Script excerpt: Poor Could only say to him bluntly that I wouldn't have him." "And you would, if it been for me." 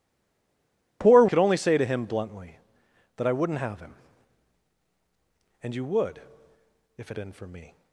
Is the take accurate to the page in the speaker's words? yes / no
yes